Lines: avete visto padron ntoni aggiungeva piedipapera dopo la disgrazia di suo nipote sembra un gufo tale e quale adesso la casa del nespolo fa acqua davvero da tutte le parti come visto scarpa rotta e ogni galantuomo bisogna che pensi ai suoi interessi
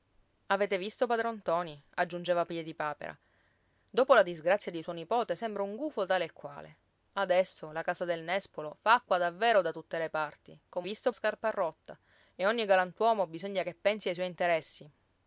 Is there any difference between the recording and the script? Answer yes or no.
no